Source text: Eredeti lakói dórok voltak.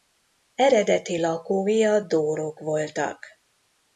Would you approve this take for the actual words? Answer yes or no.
no